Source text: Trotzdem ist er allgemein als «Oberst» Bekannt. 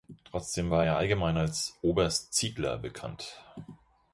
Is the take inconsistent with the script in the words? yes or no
yes